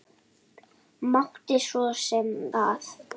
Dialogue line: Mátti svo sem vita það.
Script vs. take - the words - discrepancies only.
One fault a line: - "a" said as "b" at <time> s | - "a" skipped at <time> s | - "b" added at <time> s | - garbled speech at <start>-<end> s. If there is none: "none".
- "vita" skipped at 2.3 s